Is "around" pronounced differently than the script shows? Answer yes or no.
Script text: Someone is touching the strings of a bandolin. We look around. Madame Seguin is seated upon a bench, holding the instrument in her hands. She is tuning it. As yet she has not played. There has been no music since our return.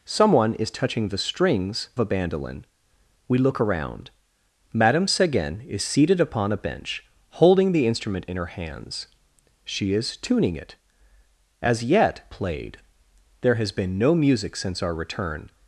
no